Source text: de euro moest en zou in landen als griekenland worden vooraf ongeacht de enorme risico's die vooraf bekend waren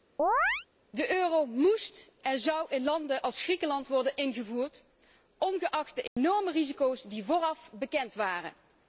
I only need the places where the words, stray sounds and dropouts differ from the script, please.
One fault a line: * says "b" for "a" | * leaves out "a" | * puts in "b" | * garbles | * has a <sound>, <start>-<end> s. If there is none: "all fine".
* has a chirp, 0.2-0.7 s
* says "ingevoerd" for "vooraf"
* has a dropout, 6.1-6.2 s